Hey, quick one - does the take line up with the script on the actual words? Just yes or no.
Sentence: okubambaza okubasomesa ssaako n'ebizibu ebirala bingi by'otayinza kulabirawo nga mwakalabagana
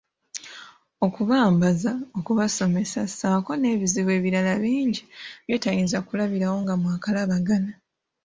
yes